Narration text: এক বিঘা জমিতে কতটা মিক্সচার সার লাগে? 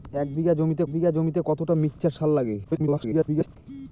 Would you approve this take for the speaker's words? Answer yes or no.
no